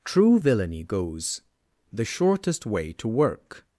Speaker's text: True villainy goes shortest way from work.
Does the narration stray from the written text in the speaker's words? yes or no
yes